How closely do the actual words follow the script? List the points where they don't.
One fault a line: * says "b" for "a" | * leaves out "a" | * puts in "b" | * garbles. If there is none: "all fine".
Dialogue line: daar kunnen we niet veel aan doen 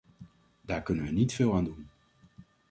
all fine